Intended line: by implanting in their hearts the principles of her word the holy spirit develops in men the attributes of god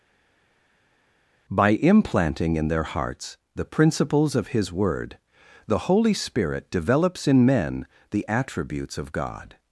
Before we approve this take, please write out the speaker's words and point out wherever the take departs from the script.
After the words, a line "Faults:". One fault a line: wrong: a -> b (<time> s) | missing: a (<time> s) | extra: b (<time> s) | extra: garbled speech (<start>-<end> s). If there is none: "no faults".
by implanting in their hearts the principles of his word the holy spirit develops in men the attributes of god
Faults:
wrong: her -> his (4.5 s)